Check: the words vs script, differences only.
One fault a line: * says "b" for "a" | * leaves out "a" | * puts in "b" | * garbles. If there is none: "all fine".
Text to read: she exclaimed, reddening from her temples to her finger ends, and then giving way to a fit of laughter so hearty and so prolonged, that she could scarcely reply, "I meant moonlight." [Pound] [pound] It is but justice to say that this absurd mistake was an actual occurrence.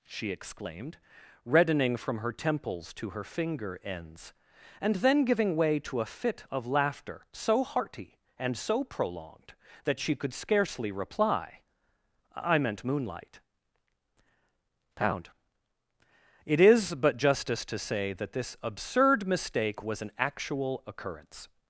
* leaves out "pound"